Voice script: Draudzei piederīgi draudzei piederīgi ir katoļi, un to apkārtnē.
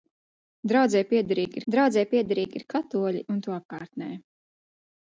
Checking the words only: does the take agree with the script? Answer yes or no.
yes